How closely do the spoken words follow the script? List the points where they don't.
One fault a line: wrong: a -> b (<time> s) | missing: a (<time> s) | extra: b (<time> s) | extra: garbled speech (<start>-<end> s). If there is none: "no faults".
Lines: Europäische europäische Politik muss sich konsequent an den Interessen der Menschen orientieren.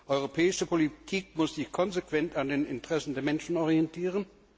missing: europäische (0.7 s)